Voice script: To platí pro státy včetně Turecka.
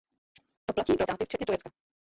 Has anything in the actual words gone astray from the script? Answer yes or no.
no